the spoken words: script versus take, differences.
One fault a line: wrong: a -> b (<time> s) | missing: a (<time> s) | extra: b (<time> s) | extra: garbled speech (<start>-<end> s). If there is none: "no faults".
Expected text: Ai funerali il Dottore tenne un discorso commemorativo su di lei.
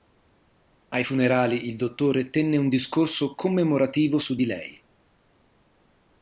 no faults